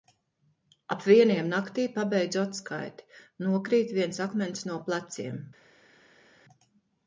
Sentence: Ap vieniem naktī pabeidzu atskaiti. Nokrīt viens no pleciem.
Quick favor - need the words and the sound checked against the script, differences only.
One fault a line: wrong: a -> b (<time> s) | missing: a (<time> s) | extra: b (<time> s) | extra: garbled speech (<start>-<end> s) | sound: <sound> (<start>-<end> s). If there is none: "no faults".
extra: akmens (4.3 s)